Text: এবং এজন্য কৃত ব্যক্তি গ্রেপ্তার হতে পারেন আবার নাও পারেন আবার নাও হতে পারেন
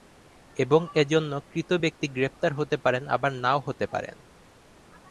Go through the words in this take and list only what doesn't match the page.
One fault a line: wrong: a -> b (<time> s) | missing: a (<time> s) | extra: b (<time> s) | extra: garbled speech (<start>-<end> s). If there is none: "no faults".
missing: পারেন আবার নাও (3.6 s)